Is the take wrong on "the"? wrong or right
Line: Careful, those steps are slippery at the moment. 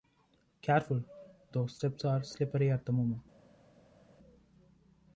right